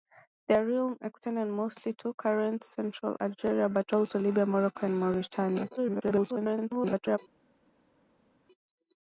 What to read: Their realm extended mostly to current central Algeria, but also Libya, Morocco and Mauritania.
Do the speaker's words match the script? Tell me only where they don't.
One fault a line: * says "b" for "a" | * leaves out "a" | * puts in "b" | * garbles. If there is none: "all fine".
* garbles